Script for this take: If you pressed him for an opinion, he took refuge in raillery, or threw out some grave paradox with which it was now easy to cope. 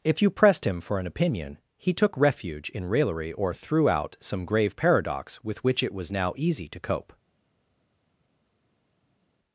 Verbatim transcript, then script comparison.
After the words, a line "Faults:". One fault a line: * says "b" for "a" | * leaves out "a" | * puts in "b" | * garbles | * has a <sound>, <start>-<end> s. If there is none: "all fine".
If you pressed him for an opinion, he took refuge in raillery, or threw out some grave paradox with which it was now easy to cope.
Faults:
all fine